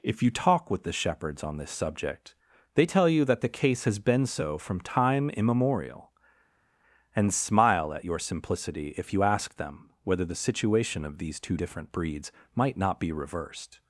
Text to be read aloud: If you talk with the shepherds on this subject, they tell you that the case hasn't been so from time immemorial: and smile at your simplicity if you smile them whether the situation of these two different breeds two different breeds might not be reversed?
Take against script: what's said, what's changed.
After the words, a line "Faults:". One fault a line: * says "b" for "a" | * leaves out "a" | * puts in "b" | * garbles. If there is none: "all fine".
If you talk with the shepherds on this subject, they tell you that the case has been so from time immemorial: and smile at your simplicity if you ask them whether the situation of these two different breeds might not be reversed?
Faults:
* says "has" for "hasn't"
* says "ask" for "smile"
* leaves out "two different breeds"